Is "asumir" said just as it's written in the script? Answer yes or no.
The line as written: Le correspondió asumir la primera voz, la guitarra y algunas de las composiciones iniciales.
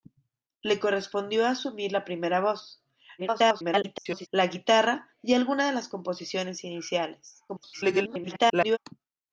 yes